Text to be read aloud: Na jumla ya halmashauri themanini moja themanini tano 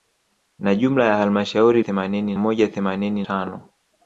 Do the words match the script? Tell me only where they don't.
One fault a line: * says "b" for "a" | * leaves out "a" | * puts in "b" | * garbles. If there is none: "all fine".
all fine